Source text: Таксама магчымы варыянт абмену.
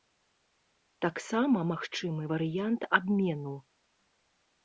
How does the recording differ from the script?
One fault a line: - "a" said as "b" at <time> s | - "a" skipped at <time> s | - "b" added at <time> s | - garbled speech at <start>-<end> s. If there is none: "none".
none